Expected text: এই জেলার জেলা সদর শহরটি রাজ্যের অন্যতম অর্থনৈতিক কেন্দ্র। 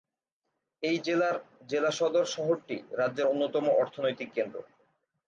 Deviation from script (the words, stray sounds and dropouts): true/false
false